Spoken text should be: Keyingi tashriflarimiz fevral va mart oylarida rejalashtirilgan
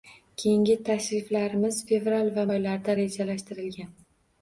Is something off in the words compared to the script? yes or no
yes